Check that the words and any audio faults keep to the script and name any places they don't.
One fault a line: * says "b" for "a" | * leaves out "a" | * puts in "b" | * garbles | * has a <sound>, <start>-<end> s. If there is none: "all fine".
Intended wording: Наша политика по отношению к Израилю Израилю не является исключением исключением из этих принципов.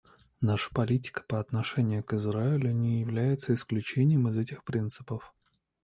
* leaves out "Израилю"
* leaves out "исключением"